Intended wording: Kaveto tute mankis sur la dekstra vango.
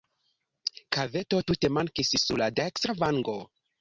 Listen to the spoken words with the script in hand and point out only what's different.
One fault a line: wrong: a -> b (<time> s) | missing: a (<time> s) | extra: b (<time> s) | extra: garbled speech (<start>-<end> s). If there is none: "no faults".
no faults